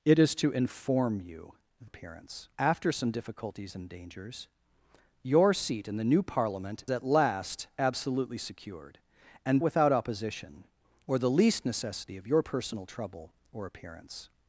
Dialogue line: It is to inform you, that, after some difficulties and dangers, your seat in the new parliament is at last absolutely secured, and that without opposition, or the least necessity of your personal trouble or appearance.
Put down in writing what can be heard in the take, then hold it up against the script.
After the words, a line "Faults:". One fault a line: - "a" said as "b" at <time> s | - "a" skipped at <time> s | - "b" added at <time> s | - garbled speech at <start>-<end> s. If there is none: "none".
It is to inform you, appearance, after some difficulties and dangers, your seat in the new parliament at last absolutely secured, and without opposition, or the least necessity of your personal trouble or appearance.
Faults:
- "that" said as "appearance" at 1.8 s
- "is" skipped at 6.8 s
- "that" skipped at 9.6 s